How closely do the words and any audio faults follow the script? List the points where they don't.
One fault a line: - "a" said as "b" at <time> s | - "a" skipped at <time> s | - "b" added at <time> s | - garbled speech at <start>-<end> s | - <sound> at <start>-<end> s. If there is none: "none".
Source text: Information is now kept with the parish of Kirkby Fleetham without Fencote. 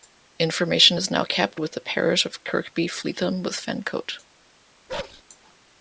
- "without" said as "with" at 3.4 s
- bark at 4.9-5.2 s